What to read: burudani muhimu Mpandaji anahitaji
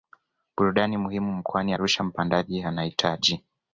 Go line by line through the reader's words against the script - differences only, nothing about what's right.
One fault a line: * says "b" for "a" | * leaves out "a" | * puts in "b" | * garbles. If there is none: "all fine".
* puts in "mkoani Arusha"